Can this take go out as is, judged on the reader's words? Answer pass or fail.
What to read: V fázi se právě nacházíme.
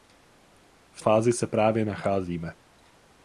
pass